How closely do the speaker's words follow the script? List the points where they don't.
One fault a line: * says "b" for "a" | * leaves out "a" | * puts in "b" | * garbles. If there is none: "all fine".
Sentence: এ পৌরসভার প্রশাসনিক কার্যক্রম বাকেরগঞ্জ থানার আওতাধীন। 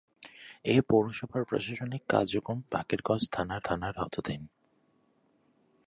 * puts in "থানার"